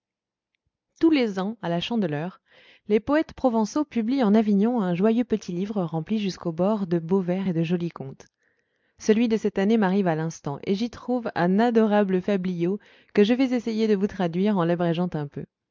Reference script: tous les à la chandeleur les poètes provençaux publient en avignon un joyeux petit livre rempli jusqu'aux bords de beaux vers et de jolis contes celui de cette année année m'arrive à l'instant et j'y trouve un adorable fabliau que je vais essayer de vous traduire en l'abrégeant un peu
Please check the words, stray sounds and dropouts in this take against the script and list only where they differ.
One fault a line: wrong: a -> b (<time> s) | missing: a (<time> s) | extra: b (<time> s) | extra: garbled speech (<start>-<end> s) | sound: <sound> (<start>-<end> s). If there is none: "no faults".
extra: ans (1.4 s)
missing: année (9.8 s)